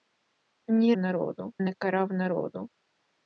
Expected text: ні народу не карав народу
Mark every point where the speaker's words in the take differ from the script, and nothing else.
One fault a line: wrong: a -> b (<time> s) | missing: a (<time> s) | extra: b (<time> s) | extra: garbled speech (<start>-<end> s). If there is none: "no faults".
no faults